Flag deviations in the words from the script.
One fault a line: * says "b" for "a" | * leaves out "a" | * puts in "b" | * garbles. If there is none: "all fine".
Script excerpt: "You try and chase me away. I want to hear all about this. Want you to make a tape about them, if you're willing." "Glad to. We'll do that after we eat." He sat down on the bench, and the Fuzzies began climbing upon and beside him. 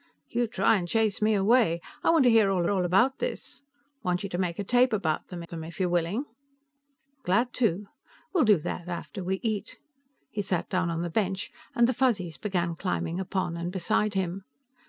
* puts in "all"
* puts in "them"